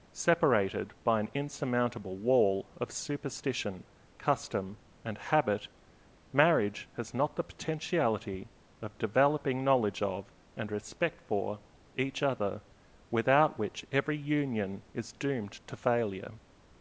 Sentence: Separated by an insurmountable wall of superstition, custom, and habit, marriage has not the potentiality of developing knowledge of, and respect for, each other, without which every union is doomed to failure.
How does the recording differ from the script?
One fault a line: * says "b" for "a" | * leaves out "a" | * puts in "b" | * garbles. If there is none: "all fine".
all fine